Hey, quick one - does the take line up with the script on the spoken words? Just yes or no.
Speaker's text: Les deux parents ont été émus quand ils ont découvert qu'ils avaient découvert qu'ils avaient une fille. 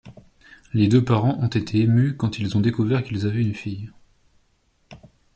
no